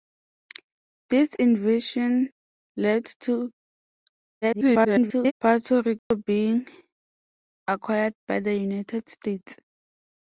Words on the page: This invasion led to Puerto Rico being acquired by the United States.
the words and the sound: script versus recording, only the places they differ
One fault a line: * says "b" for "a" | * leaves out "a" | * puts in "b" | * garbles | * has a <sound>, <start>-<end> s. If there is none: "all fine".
* garbles
* has a dropout, 6.0-6.1 s